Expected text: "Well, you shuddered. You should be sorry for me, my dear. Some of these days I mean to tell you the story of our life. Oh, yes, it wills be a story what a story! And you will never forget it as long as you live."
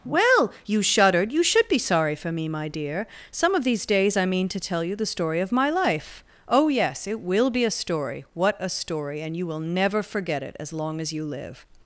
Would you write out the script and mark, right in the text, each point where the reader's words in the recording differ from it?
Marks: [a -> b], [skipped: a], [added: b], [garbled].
"Well, you shuddered. You should be sorry for me, my dear. Some of these days I mean to tell you the story of [our -> my] life. Oh, yes, it [wills -> will] be a story what a story! And you will never forget it as long as you live."